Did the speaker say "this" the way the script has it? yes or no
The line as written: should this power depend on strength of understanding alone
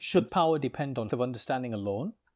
no